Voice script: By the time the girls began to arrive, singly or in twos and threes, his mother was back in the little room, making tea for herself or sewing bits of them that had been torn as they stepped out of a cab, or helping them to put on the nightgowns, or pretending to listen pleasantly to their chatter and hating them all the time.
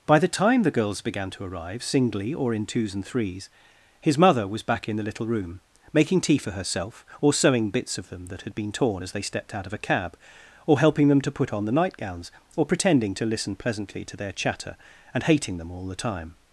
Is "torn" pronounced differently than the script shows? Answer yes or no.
no